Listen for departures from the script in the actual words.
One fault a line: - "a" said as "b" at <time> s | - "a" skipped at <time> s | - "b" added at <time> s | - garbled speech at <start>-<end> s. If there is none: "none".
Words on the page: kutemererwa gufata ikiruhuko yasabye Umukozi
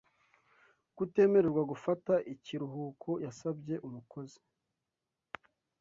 none